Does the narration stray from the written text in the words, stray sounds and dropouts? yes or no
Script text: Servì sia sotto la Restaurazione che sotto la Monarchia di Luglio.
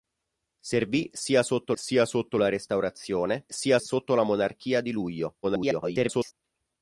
yes